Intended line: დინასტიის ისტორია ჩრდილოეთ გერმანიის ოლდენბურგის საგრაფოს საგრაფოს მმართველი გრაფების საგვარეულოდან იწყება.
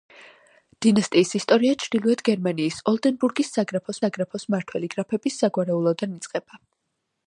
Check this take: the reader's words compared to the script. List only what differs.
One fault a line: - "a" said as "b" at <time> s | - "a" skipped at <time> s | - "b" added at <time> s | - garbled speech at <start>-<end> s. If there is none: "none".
none